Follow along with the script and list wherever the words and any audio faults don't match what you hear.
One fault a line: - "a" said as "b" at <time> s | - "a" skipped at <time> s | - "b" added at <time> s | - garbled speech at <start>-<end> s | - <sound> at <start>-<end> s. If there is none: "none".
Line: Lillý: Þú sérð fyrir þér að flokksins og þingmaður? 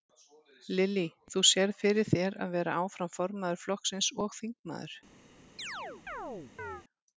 - "vera áfram formaður" added at 2.6 s
- chirp at 5.6-6.8 s